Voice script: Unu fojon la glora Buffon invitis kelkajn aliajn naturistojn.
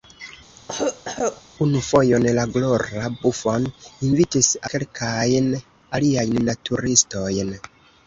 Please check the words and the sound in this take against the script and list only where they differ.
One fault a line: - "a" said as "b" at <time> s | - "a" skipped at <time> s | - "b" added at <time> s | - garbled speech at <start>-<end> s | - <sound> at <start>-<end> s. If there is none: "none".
- cough at 0.6-1.4 s